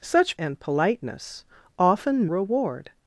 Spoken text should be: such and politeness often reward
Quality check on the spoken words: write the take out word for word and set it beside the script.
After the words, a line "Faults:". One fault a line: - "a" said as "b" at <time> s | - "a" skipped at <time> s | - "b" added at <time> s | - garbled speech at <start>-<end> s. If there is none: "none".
such and politeness often reward
Faults:
none